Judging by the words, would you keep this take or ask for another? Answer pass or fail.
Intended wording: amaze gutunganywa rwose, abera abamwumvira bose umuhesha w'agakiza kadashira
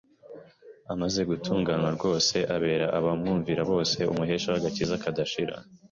pass